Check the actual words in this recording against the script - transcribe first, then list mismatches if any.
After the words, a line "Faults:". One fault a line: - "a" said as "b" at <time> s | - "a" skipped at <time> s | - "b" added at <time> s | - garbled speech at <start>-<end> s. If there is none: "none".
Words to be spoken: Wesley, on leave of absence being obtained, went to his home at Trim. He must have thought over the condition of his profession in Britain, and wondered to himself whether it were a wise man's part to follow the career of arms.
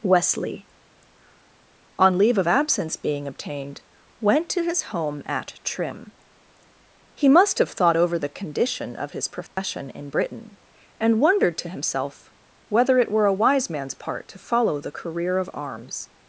Wesley, on leave of absence being obtained, went to his home at Trim. He must have thought over the condition of his profession in Britain, and wondered to himself whether it were a wise man's part to follow the career of arms.
Faults:
none